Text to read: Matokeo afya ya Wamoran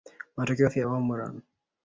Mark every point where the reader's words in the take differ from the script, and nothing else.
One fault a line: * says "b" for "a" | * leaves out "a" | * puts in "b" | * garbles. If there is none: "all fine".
all fine